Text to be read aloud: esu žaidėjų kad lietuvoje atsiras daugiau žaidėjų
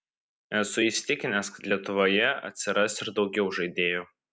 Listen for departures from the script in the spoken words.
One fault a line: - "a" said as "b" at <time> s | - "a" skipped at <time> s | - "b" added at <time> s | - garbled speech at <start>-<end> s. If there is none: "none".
- "žaidėjų" said as "įsitikinęs" at 0.8 s
- "ir" added at 3.1 s